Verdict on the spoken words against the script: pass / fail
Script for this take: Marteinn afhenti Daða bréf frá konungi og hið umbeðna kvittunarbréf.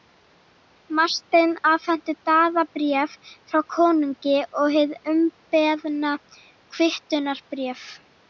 pass